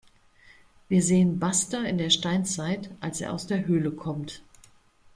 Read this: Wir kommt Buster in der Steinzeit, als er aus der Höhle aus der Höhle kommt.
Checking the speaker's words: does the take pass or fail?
fail